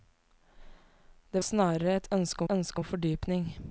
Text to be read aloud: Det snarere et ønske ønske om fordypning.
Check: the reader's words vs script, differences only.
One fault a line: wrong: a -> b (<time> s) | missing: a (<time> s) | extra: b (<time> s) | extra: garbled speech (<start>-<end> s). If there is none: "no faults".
no faults